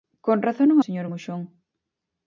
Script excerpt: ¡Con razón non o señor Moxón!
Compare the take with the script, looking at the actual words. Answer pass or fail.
pass